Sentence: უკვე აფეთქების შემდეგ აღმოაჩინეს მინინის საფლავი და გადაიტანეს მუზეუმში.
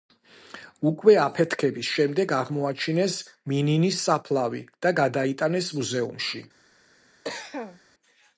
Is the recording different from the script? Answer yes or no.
no